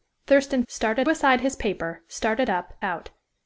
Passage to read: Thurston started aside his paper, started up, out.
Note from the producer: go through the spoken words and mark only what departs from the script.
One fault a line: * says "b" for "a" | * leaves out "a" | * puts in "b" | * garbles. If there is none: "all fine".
all fine